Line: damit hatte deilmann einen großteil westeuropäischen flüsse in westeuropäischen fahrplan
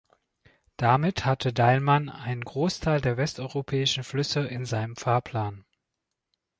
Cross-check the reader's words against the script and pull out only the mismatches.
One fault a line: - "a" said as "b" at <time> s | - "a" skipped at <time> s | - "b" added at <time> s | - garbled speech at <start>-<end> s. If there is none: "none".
- "der" added at 3.0 s
- "westeuropäischen" said as "seinem" at 4.6 s